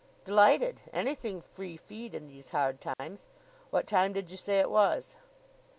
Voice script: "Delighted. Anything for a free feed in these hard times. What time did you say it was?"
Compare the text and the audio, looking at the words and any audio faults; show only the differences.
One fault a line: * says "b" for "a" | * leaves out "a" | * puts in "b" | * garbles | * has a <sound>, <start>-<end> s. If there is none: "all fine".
* leaves out "for"
* has a dropout, 2.9-3.0 s